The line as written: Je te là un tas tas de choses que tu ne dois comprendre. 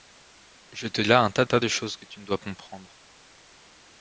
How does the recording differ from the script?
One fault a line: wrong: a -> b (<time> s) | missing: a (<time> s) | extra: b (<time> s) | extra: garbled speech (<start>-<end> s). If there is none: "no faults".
no faults